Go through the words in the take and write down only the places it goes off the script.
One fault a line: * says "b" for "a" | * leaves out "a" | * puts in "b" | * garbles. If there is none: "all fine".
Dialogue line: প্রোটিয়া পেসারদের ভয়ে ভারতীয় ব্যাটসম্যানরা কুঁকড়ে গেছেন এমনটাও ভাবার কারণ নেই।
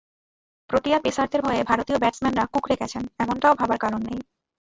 all fine